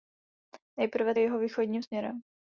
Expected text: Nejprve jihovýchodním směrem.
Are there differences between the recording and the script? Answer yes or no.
no